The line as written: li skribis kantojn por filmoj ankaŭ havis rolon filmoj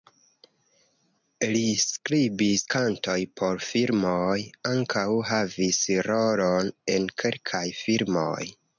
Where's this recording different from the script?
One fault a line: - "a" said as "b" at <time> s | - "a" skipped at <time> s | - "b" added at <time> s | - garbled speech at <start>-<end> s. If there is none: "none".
- "en kelkaj" added at 7.0 s